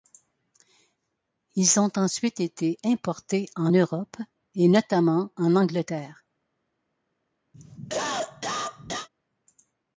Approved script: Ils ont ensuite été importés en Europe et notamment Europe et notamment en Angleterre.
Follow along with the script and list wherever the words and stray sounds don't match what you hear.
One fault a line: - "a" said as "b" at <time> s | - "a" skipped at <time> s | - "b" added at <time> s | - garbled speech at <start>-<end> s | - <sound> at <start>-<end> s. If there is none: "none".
- "Europe et notamment" skipped at 5.3 s
- cough at 7.5-9.1 s